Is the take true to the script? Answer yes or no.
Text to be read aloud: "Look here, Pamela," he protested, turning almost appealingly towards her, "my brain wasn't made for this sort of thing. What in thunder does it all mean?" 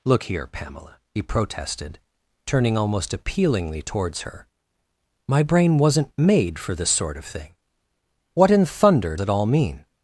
no